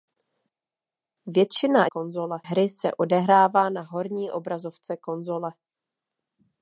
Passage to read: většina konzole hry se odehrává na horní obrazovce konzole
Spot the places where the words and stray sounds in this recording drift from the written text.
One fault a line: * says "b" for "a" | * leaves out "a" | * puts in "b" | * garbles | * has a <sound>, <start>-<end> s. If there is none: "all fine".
all fine